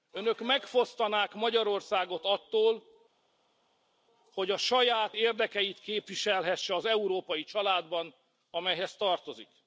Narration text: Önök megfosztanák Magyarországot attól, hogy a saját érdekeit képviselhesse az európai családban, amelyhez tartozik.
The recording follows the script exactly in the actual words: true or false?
true